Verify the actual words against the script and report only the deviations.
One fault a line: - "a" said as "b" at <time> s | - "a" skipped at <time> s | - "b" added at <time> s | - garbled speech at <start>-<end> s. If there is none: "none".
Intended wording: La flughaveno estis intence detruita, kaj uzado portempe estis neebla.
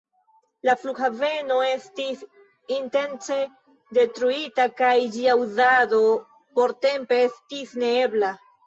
- "ĝia" added at 5.2 s